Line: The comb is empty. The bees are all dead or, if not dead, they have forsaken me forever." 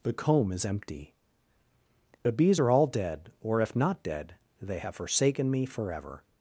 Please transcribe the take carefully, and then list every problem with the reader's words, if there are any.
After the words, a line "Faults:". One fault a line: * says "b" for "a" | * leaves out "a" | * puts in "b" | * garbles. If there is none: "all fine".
The comb is empty. The bees are all dead or, if not dead, they have forsaken me forever."
Faults:
all fine